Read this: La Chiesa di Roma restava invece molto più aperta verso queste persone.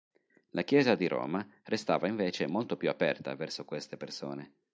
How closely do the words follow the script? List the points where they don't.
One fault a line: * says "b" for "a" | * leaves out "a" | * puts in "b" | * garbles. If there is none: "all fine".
all fine